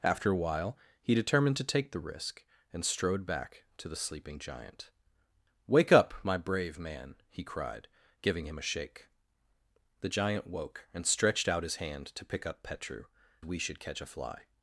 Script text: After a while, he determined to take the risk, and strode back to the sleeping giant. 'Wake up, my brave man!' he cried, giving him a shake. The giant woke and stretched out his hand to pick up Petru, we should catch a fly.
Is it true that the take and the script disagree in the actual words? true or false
false